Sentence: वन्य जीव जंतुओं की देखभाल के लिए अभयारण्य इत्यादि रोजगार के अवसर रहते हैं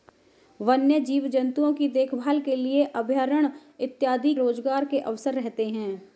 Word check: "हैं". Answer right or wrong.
right